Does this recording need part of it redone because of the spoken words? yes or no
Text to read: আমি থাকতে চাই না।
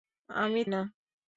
yes